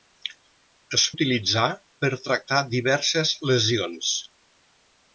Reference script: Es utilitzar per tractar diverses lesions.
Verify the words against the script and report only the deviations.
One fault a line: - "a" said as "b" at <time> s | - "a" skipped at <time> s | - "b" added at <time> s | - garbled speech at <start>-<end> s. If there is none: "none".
none